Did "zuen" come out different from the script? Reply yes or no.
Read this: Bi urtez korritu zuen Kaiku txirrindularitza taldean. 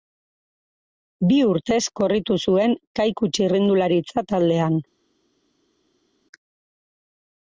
no